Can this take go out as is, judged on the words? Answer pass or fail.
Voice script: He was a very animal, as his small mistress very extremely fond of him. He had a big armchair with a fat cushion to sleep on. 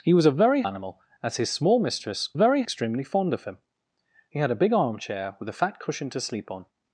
pass